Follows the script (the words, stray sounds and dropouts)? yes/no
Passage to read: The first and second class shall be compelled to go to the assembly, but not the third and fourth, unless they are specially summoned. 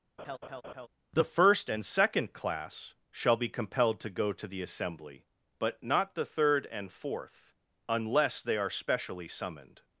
no